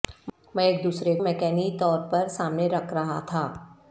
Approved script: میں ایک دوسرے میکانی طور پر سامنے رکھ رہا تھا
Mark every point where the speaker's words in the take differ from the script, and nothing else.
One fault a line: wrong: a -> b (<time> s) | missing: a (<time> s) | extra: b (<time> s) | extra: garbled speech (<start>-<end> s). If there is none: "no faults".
no faults